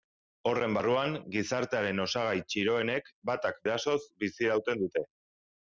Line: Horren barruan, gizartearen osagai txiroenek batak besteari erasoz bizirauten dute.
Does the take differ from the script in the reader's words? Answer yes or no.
yes